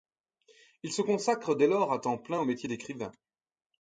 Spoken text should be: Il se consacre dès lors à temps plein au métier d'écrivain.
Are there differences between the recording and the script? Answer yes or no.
no